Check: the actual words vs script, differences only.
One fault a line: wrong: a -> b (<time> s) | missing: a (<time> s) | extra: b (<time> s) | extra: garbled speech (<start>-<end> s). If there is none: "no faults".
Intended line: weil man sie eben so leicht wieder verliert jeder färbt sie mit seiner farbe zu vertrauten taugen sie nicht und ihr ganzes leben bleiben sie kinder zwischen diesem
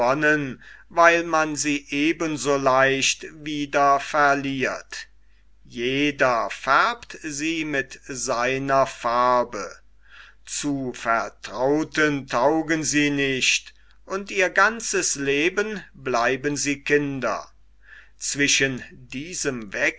no faults